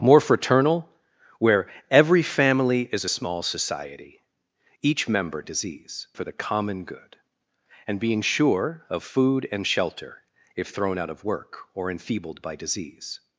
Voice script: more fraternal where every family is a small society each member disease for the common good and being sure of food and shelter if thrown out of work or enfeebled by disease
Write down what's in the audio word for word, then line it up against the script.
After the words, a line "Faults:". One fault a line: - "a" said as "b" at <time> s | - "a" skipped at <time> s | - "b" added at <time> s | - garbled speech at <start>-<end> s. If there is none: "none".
more fraternal where every family is a small society each member disease for the common good and being sure of food and shelter if thrown out of work or enfeebled by disease
Faults:
none